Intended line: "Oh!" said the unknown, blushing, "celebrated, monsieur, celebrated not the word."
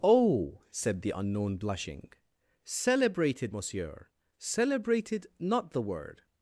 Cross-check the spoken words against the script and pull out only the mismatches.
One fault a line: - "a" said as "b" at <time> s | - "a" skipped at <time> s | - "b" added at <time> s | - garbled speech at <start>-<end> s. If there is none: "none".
none